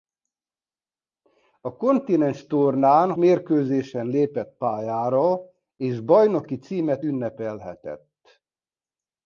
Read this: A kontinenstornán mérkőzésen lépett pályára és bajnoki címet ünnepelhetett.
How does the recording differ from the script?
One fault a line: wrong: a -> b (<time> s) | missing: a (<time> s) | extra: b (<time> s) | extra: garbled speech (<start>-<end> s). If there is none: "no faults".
no faults